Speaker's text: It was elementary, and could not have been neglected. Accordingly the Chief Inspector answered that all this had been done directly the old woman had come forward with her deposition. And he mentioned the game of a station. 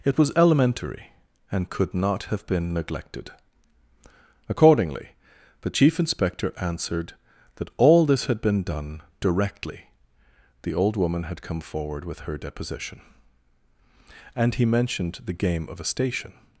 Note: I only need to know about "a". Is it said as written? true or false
true